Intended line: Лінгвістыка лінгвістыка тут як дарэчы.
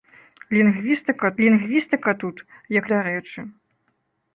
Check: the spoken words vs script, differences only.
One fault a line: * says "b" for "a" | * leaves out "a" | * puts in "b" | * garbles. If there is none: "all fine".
all fine